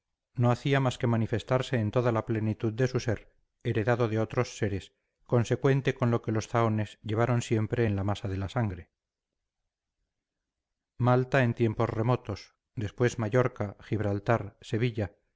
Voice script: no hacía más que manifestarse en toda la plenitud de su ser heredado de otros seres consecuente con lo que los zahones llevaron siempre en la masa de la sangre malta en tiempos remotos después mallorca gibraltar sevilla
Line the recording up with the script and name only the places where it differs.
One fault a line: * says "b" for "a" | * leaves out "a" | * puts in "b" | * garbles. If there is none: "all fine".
all fine